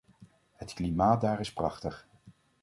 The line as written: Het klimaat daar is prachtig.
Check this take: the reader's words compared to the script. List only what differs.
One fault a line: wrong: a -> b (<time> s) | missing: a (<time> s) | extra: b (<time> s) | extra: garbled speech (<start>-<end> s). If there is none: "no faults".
no faults